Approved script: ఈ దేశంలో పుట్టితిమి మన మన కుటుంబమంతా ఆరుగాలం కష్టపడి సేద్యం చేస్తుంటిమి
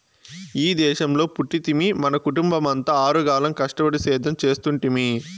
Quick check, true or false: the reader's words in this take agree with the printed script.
false